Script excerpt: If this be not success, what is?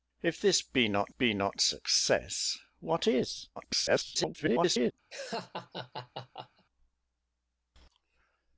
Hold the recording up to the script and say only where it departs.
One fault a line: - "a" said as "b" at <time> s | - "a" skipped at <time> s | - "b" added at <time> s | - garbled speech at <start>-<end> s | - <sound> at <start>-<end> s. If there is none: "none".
- "be not" added at 1.1 s
- garbled speech at 3.6-4.9 s
- laugh at 5.1-6.6 s